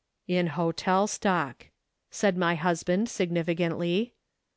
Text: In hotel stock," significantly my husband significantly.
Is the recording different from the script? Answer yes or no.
yes